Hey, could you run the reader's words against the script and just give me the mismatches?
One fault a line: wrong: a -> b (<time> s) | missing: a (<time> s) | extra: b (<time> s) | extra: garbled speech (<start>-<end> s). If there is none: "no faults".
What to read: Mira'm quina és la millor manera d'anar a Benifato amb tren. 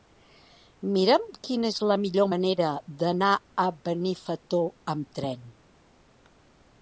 no faults